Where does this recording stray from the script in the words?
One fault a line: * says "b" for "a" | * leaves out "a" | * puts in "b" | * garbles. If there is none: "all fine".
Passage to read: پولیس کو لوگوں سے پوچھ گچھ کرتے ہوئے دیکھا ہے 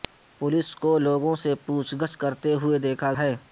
all fine